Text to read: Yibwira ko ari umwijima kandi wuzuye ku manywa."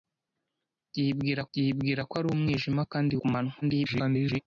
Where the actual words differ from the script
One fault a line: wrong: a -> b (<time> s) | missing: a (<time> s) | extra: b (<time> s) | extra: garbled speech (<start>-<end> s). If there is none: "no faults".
extra: yibwira (1.6 s)
missing: wuzuye (3.1 s)
extra: garbled speech (3.6-4.4 s)